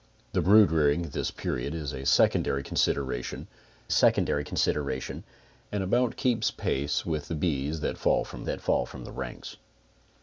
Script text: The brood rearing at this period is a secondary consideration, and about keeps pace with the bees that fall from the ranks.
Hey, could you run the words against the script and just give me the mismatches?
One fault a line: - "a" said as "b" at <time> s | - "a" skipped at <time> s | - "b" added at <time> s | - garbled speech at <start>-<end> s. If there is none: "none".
- "secondary consideration" added at 3.9 s
- "that fall from" added at 8.4 s